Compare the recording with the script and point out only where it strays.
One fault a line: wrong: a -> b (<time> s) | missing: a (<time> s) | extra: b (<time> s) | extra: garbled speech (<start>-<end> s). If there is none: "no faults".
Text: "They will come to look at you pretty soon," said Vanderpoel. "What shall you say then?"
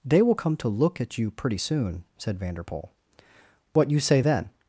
missing: shall (3.9 s)